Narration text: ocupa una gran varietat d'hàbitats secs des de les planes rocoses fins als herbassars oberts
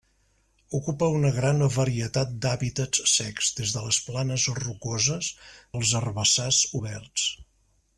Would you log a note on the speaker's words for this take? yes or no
yes